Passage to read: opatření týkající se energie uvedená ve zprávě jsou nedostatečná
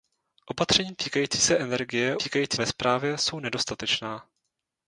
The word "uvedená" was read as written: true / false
false